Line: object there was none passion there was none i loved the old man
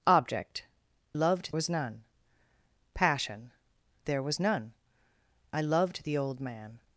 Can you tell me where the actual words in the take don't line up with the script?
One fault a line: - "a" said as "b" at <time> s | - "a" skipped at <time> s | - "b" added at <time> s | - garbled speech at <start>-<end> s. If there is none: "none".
- "there" said as "loved" at 1.1 s